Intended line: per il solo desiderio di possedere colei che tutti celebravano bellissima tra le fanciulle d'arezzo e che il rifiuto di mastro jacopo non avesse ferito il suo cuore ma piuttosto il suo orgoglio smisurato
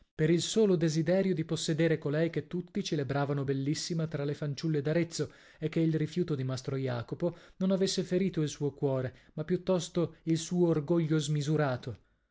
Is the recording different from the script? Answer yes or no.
no